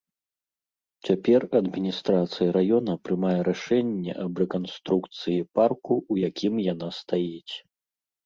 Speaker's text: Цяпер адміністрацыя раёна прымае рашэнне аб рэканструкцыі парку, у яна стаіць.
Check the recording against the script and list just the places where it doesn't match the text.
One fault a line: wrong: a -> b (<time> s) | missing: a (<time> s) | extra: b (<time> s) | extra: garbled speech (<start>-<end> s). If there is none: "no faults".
extra: якім (6.3 s)